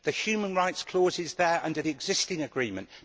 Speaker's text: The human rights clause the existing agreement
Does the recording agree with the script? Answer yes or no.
no